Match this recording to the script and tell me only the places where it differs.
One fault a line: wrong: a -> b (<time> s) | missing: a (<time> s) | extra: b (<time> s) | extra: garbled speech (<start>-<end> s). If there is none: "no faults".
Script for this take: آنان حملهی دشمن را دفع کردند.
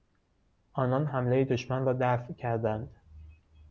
no faults